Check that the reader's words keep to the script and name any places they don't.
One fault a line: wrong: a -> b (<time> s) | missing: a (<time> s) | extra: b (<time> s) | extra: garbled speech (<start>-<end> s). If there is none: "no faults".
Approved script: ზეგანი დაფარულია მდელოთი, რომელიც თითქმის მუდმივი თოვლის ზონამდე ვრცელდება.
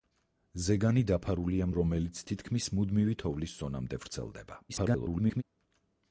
missing: მდელოთი (1.7 s)
extra: garbled speech (4.7-5.4 s)